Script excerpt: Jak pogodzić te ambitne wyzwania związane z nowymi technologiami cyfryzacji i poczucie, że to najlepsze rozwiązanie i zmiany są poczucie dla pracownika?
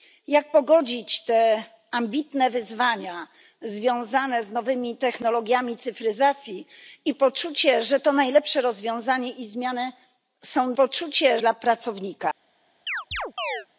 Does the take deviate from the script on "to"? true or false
false